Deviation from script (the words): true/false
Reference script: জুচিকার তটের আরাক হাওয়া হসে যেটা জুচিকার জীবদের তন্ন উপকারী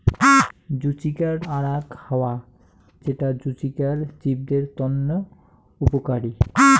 true